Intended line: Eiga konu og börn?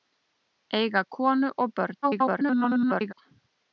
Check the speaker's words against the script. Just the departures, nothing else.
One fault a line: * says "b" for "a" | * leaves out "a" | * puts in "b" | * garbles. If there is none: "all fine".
* garbles